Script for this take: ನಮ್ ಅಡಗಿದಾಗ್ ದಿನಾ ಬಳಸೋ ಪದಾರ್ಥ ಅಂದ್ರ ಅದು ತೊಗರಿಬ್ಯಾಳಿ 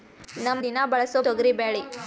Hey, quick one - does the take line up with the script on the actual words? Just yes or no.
no